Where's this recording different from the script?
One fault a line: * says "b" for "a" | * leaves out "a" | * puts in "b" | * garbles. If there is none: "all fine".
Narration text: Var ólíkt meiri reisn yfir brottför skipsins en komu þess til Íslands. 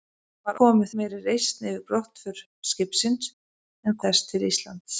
* says "komu" for "ólíkt"
* leaves out "komu"